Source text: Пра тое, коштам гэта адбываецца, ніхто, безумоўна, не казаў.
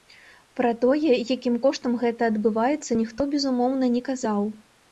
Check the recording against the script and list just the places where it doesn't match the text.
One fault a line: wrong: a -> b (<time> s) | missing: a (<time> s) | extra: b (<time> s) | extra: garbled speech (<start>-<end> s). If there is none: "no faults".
extra: якім (1.4 s)